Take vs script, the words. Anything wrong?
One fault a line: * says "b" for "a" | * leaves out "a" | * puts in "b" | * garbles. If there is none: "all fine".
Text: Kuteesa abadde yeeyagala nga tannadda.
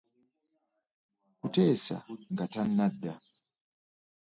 * leaves out "abadde yeeyagala"